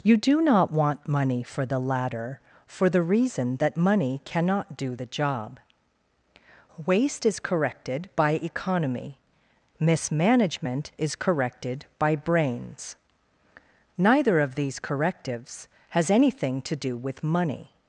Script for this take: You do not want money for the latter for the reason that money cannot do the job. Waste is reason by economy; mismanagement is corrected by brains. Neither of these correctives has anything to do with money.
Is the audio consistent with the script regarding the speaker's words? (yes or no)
no